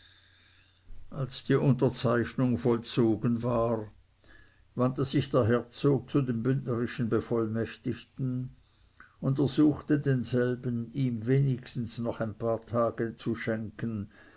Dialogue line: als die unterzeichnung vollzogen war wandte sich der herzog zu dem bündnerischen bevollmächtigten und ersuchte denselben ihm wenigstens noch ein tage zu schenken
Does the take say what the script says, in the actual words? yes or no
no